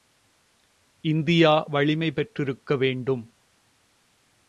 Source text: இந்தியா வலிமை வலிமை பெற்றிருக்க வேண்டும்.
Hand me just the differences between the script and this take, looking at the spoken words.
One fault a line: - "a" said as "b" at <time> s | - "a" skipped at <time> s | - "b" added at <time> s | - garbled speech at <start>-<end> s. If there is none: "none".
- "வலிமை" skipped at 2.1 s